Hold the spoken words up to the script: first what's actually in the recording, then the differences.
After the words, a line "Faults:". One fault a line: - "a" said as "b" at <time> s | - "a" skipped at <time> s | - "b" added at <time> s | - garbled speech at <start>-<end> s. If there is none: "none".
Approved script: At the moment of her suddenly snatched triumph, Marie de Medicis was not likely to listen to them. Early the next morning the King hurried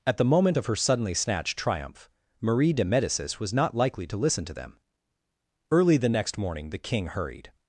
At the moment of her suddenly snatched triumph, Marie de Medicis was not likely to listen to them. Early the next morning the King hurried
Faults:
none